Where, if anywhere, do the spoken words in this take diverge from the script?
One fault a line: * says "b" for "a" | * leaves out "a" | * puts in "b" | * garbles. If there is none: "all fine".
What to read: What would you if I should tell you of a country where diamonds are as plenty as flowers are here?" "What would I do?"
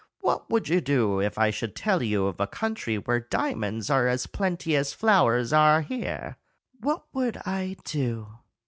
* puts in "do"